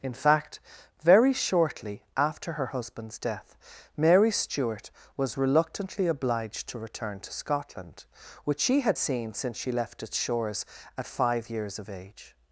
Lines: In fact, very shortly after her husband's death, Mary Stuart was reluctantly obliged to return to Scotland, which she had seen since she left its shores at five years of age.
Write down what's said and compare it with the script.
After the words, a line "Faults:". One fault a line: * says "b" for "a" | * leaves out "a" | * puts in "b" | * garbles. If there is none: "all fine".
In fact, very shortly after her husband's death, Mary Stuart was reluctantly obliged to return to Scotland, which she had seen since she left its shores at five years of age.
Faults:
all fine